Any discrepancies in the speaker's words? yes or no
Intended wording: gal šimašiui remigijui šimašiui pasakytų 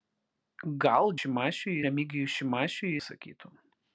no